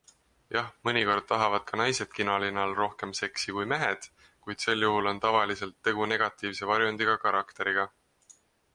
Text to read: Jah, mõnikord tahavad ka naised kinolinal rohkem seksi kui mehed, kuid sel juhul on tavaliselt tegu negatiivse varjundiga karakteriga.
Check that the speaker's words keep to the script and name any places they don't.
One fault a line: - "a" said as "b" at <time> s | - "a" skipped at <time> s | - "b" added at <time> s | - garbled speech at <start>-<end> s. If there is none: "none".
none